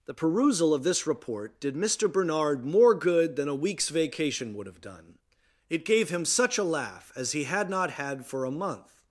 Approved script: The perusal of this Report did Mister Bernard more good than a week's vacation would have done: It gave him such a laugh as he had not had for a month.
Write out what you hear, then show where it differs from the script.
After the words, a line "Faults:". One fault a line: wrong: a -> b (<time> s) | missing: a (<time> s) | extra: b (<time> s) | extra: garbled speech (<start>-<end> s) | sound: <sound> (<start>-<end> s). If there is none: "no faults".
The perusal of this Report did Mister Bernard more good than a week's vacation would have done: It gave him such a laugh as he had not had for a month.
Faults:
no faults